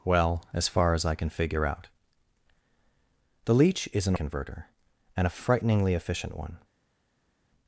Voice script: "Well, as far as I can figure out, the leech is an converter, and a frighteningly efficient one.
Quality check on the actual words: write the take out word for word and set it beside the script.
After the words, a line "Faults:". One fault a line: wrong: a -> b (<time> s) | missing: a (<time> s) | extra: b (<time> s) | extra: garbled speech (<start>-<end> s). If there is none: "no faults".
"Well, as far as I can figure out, the leech is an converter, and a frighteningly efficient one.
Faults:
no faults